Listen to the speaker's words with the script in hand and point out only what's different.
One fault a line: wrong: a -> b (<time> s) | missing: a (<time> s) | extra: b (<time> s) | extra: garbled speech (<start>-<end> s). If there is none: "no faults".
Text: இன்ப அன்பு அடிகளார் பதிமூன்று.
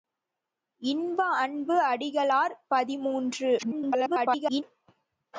extra: garbled speech (3.6-4.6 s)